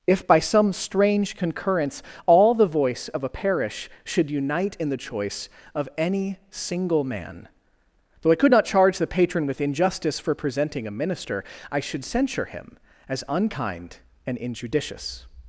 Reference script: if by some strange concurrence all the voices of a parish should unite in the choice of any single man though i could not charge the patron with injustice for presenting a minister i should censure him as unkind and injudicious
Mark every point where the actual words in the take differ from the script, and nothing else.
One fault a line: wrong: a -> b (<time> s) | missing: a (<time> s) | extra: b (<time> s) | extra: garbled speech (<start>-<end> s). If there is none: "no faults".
wrong: voices -> voice (2.6 s)